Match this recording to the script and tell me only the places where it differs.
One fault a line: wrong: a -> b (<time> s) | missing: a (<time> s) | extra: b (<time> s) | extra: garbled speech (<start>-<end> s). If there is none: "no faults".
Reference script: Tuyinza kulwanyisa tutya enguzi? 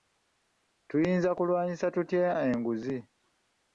no faults